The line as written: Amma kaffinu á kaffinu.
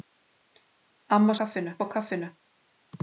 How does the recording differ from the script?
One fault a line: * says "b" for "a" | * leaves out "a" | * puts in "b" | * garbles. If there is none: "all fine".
all fine